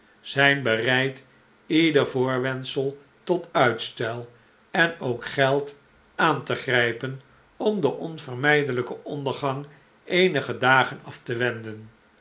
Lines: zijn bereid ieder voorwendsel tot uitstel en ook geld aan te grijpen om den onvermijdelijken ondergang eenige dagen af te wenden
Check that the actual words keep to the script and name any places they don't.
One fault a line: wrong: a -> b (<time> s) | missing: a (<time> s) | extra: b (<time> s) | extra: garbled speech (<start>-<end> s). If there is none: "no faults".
no faults